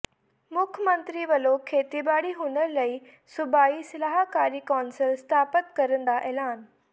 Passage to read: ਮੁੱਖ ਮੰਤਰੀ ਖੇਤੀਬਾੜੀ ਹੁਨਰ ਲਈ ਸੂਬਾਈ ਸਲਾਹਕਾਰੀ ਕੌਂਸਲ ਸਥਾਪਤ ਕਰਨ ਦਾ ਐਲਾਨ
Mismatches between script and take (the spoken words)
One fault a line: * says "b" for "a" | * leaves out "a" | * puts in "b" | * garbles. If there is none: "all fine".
* puts in "ਵੱਲੋਂ"